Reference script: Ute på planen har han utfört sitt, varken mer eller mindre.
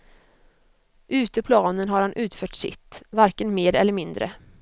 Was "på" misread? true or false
true